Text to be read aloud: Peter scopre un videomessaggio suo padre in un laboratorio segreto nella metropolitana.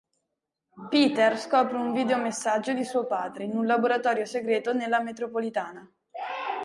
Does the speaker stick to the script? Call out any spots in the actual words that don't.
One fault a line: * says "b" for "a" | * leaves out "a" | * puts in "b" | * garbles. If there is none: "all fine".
* puts in "di"